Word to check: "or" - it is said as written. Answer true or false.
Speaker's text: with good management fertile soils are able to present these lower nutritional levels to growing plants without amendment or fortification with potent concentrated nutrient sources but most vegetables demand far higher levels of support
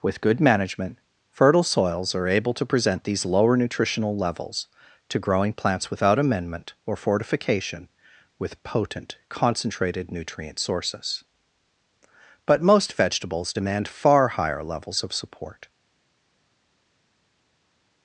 true